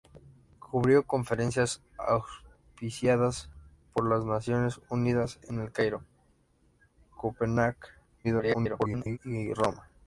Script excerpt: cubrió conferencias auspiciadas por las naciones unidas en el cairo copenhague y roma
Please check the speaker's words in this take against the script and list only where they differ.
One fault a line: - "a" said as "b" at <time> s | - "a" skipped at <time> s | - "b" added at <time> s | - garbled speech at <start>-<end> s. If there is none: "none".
- garbled speech at 8.2-9.2 s